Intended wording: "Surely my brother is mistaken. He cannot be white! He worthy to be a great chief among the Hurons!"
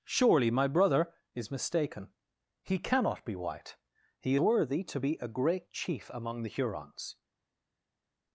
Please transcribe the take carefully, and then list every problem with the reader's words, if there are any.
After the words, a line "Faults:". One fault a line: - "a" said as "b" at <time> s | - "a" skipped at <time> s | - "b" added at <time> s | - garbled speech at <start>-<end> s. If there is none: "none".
"Surely my brother is mistaken. He cannot be white! He worthy to be a great chief among the Hurons!"
Faults:
none